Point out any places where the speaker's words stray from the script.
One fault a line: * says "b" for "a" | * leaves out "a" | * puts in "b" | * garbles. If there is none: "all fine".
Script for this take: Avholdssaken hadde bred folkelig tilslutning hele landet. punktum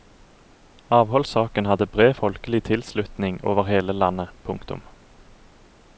* puts in "over"